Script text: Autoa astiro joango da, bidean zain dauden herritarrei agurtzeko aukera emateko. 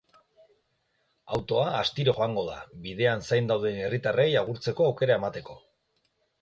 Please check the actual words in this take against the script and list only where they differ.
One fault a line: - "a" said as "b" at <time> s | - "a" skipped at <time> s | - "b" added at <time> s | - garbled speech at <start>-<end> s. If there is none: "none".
none